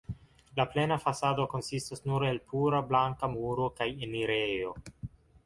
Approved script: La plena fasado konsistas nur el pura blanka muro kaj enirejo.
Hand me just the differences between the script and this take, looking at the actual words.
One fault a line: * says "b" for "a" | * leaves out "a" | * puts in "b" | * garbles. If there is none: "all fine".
all fine